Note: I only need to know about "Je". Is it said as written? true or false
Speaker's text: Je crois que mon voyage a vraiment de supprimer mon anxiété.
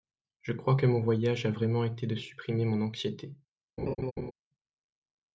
true